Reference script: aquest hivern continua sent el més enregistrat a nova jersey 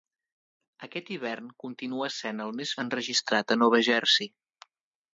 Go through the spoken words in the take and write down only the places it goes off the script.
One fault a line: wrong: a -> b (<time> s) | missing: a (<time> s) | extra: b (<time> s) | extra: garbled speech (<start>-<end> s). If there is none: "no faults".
no faults